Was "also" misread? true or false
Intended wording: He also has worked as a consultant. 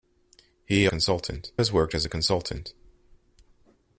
true